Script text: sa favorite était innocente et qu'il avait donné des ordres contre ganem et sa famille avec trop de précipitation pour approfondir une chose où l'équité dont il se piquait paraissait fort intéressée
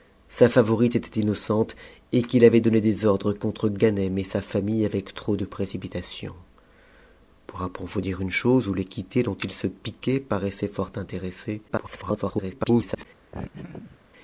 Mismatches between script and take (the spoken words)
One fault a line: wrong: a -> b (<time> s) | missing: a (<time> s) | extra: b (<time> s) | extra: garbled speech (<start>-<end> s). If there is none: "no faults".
extra: garbled speech (11.7-13.1 s)